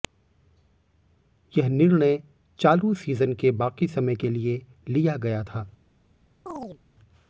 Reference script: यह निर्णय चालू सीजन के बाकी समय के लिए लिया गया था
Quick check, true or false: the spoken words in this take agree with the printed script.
true